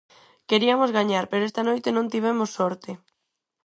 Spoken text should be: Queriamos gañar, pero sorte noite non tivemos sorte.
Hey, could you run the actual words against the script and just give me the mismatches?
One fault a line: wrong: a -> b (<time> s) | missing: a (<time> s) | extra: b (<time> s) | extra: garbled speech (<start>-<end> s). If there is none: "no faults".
wrong: sorte -> esta (1.5 s)